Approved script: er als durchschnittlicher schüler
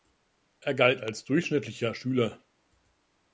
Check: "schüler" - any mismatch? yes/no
no